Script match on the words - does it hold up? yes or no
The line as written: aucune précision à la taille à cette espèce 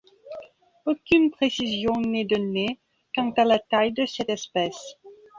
no